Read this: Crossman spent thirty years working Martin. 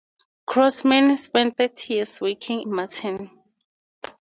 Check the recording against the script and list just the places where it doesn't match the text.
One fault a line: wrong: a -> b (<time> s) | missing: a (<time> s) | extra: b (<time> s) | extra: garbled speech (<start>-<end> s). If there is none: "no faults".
no faults